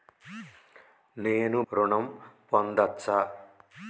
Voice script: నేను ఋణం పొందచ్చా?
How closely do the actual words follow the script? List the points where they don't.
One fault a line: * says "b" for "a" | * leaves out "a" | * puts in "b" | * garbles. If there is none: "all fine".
all fine